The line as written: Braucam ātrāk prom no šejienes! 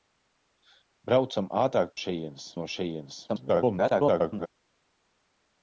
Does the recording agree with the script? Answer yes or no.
no